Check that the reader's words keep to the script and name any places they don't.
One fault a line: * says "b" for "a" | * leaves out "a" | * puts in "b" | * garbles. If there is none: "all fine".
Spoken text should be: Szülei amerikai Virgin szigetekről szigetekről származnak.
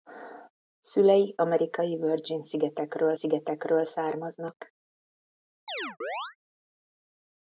all fine